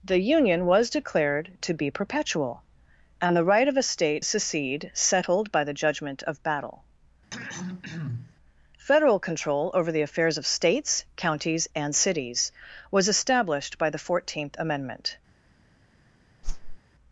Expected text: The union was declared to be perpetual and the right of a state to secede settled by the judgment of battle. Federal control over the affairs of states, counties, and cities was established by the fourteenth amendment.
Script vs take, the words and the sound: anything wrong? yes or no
yes